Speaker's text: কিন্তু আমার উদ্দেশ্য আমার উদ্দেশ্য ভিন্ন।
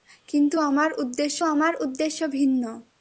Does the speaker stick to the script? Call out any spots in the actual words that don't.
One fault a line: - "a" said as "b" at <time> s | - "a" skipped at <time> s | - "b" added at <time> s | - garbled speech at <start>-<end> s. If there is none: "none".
none